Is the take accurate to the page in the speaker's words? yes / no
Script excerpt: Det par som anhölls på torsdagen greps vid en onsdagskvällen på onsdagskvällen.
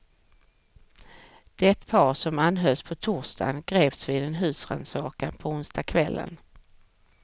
no